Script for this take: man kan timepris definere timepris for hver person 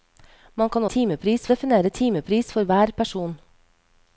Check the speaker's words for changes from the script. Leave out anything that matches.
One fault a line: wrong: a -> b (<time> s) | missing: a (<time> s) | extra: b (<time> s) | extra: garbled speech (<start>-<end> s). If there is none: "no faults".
no faults